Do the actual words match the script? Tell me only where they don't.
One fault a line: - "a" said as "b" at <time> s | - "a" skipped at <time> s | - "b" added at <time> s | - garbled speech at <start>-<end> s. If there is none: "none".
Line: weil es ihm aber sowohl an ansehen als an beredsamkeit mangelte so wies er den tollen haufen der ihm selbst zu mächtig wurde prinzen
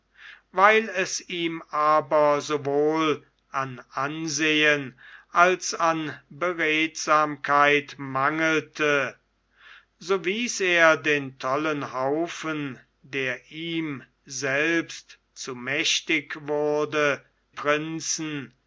none